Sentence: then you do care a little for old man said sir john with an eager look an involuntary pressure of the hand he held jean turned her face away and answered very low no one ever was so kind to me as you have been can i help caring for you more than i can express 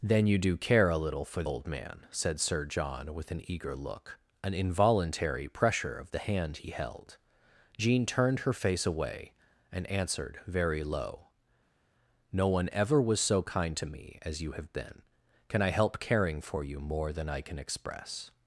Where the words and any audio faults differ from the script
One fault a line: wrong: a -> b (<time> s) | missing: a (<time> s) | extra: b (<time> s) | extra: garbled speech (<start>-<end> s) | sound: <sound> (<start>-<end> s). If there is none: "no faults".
no faults